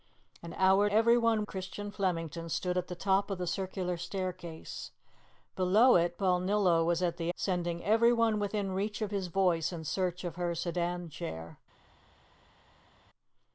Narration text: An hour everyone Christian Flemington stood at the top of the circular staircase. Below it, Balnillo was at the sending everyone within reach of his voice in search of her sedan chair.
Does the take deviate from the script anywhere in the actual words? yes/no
no